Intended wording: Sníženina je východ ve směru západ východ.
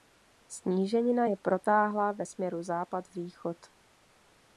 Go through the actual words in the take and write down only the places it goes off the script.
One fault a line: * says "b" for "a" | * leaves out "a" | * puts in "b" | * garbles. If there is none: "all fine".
* says "protáhlá" for "východ"